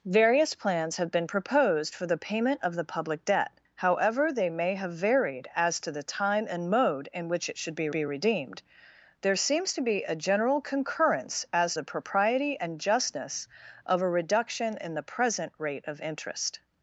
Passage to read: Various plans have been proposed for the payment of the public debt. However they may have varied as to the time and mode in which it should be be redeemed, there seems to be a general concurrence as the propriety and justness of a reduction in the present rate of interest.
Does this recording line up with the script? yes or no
yes